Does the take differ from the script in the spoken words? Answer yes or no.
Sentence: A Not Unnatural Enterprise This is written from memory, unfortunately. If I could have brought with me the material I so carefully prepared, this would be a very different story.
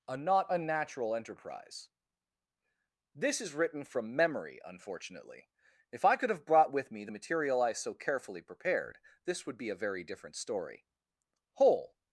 yes